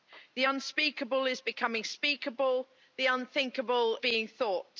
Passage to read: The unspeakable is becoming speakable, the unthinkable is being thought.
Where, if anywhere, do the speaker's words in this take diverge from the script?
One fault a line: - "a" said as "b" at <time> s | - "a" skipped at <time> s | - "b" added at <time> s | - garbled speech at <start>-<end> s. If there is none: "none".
- "is" skipped at 4.0 s